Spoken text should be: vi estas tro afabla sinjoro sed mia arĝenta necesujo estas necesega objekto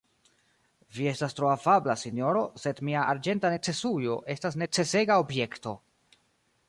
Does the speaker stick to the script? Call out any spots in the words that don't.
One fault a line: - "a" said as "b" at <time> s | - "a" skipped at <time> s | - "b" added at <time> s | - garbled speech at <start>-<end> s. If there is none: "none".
none